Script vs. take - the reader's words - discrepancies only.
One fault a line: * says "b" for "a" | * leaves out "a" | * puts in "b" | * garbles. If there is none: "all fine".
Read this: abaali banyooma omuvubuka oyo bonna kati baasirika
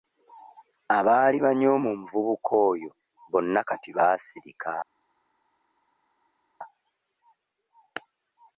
all fine